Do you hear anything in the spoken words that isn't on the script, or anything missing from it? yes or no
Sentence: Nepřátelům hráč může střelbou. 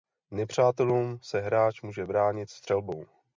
yes